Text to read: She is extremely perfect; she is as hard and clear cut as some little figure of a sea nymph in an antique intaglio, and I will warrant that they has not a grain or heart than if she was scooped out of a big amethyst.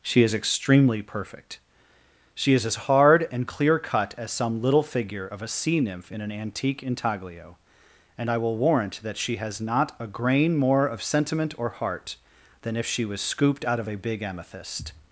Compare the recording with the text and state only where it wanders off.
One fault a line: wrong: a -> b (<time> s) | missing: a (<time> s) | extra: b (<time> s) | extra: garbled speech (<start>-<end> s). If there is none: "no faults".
wrong: they -> she (9.2 s)
extra: more of sentiment (10.6 s)